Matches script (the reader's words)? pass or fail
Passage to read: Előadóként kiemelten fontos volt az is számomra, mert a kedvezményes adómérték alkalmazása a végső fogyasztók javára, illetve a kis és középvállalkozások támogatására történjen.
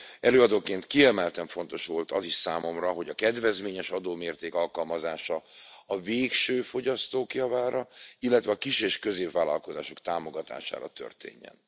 fail